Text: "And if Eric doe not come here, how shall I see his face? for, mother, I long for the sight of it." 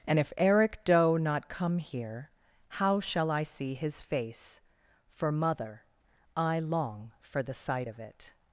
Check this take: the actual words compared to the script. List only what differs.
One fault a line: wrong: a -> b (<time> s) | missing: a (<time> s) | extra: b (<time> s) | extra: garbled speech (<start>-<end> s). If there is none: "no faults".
no faults